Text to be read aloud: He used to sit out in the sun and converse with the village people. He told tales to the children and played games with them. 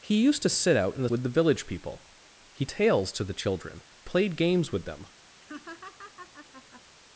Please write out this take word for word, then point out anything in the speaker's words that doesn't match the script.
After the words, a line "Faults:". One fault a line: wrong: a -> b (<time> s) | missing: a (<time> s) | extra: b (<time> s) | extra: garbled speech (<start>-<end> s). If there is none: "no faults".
He used to sit out in the with the village people. He tales to the children played games with them.
Faults:
missing: sun and converse (1.1 s)
missing: told (2.7 s)
missing: and (3.8 s)